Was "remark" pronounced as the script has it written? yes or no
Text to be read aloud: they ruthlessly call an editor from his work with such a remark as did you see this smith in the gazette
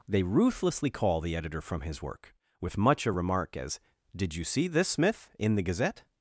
yes